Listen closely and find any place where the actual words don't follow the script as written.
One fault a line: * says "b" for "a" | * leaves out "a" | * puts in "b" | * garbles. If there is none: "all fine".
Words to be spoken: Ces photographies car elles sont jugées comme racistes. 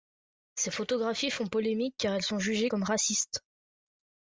* puts in "font polémique"